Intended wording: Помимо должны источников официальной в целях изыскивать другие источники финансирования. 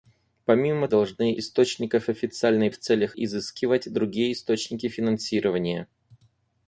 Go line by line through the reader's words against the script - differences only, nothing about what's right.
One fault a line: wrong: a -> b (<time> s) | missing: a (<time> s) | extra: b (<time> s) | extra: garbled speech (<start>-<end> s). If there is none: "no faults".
no faults